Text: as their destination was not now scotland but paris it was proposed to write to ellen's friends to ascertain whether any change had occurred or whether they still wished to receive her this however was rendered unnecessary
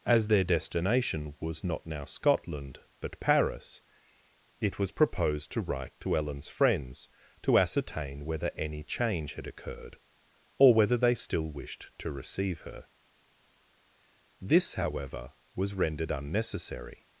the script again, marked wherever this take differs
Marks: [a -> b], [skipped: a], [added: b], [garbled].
as their destination was not now scotland but paris it was proposed to write to ellen's friends to ascertain whether any change had occurred or whether they still wished to receive her this however was rendered unnecessary